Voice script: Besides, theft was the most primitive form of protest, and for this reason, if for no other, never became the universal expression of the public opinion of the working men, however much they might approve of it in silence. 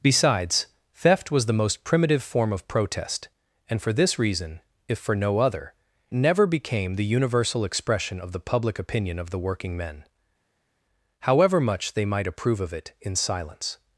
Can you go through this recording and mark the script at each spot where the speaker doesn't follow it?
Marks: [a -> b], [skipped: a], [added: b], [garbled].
Besides, theft was the most primitive form of protest, and for this reason, if for no other, never became the universal expression of the public opinion of the working men, however much they might approve of it in silence.